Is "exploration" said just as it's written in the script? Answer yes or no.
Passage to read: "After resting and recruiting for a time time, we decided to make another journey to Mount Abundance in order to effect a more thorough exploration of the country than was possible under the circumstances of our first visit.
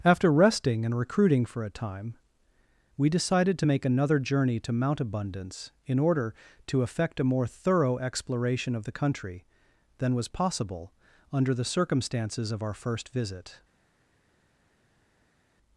yes